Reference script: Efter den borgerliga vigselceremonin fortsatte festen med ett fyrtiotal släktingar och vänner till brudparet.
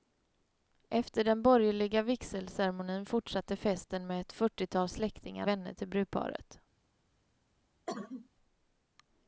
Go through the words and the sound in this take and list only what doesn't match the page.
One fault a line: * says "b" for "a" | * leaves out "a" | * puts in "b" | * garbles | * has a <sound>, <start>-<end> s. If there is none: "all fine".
* leaves out "och"
* has a cough, 7.9-8.3 s